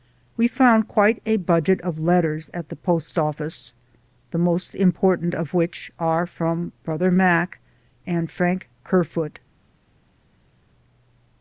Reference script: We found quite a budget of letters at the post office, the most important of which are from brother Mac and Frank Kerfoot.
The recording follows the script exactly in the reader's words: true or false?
true